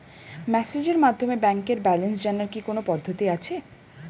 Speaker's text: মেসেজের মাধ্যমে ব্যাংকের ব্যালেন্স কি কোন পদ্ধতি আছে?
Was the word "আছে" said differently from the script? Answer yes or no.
no